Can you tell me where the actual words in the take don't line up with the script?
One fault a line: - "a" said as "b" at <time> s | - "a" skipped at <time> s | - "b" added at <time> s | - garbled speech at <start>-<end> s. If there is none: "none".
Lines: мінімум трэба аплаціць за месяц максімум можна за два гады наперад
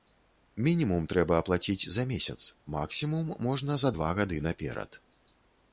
none